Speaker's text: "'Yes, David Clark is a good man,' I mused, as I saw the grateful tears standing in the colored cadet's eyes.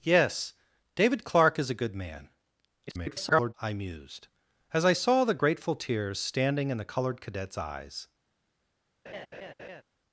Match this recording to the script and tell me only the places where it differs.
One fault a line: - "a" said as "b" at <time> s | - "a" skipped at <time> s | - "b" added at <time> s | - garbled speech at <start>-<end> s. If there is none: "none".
- garbled speech at 2.9-3.5 s